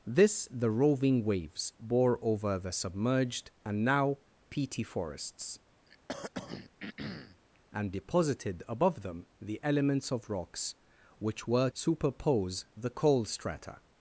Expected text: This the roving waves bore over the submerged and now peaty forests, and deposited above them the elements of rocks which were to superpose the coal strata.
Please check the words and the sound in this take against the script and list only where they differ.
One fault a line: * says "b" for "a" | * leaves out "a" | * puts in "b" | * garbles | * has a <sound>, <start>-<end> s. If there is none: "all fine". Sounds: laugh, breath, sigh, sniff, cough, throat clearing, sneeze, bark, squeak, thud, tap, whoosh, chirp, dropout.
* has a throat clearing, 5.9-7.4 s
* leaves out "to"